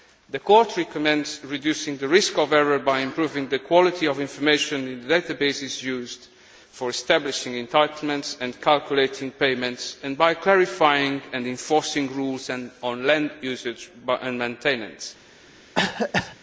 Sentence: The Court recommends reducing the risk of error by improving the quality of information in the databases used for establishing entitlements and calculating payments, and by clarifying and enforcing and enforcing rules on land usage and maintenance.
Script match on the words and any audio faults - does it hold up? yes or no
no